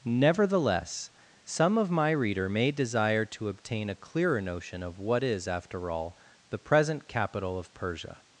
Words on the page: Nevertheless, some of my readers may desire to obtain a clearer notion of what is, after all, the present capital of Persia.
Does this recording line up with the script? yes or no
no